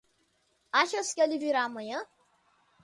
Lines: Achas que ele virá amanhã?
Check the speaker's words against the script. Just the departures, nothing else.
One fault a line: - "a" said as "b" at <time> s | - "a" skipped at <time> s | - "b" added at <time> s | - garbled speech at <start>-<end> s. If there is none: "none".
none